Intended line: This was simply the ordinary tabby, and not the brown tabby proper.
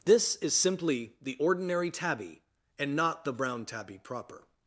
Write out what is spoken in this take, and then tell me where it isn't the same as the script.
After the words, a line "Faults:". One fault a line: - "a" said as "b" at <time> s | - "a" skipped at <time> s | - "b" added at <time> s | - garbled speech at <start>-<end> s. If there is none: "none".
This is simply the ordinary tabby, and not the brown tabby proper.
Faults:
- "was" said as "is" at 0.4 s